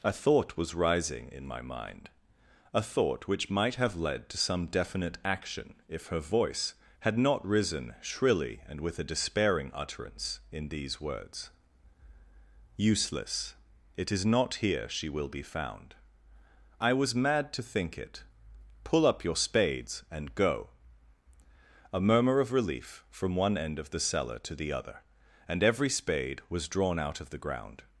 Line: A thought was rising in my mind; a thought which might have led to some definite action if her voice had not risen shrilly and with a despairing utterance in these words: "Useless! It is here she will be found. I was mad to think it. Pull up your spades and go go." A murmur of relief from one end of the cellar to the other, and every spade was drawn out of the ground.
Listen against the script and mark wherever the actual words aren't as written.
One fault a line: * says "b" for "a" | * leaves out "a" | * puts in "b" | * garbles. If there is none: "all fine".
* puts in "not"
* leaves out "go"